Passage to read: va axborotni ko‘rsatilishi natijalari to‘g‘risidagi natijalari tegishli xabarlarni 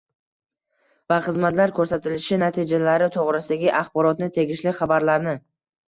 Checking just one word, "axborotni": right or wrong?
wrong